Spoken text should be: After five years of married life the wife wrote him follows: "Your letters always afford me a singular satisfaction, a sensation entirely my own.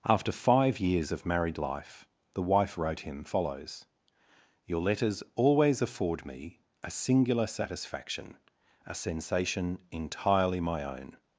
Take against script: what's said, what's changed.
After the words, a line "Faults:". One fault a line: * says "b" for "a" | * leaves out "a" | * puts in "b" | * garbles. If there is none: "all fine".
After five years of married life the wife wrote him follows: "Your letters always afford me a singular satisfaction, a sensation entirely my own.
Faults:
all fine